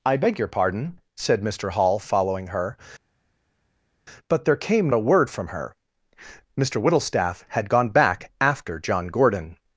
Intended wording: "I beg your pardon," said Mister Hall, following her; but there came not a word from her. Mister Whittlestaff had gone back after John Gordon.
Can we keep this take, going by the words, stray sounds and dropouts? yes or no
no